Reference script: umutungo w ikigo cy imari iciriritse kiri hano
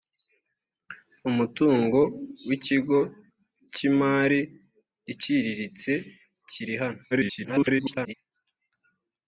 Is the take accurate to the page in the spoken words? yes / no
no